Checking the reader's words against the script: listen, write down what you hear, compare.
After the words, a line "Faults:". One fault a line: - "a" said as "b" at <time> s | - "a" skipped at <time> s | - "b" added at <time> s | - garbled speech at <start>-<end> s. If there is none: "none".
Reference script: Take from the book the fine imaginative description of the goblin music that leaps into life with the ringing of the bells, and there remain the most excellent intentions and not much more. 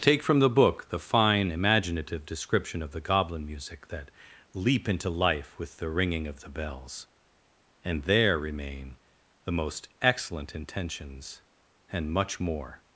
Take from the book the fine imaginative description of the goblin music that leap into life with the ringing of the bells, and there remain the most excellent intentions and much more.
Faults:
- "leaps" said as "leap" at 4.5 s
- "not" skipped at 12.1 s